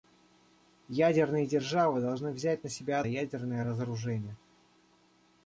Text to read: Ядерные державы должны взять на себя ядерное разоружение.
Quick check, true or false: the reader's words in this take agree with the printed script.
true